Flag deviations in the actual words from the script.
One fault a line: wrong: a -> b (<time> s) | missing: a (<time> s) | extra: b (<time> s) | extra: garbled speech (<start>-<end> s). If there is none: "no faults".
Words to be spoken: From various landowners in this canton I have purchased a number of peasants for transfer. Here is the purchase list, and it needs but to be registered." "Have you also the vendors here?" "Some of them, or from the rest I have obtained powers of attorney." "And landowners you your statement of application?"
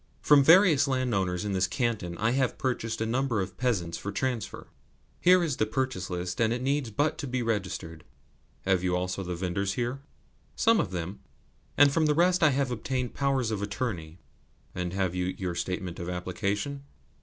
wrong: or -> and (11.8 s)
wrong: landowners -> have (14.9 s)